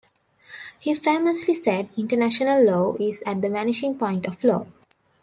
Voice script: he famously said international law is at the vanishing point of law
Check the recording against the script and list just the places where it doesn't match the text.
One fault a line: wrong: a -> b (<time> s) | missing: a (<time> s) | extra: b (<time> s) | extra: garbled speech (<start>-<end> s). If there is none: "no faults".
no faults